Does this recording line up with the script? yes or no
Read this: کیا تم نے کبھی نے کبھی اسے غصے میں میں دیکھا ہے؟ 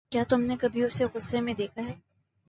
no